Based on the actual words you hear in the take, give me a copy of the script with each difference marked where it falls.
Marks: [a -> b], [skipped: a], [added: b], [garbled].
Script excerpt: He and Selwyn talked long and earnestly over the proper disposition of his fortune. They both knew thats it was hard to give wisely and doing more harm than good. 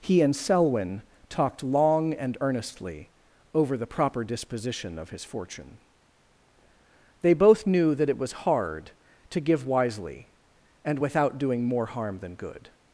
He and Selwyn talked long and earnestly over the proper disposition of his fortune. They both knew [thats -> that] it was hard to give wisely and [added: without] doing more harm than good.